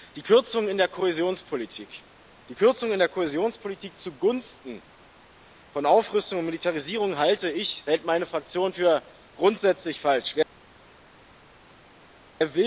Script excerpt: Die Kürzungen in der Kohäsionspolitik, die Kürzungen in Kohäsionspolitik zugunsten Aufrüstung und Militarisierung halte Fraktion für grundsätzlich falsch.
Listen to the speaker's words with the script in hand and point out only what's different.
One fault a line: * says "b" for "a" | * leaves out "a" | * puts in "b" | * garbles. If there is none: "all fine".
* puts in "der"
* puts in "von"
* puts in "ich hält meine"